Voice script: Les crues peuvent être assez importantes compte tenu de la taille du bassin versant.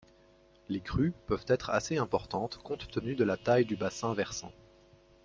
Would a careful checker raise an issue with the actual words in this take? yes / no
no